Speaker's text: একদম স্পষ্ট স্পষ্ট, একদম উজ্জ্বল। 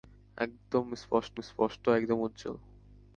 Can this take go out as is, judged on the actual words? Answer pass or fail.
pass